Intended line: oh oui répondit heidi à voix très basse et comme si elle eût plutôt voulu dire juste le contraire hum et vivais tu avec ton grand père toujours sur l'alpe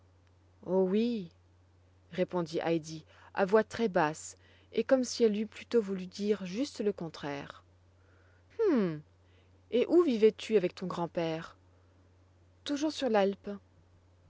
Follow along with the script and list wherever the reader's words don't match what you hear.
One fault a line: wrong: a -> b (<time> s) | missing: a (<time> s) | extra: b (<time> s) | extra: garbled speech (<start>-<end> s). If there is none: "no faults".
extra: où (9.9 s)